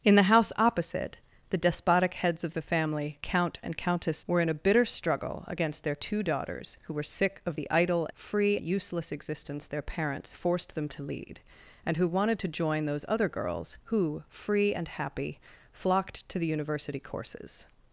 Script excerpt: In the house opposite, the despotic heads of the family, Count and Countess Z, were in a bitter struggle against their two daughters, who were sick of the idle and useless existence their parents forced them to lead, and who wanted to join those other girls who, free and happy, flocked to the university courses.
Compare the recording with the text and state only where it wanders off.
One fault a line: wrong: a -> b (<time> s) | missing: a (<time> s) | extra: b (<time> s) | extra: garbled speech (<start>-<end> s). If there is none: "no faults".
missing: Z (4.2 s)
wrong: and -> free (8.1 s)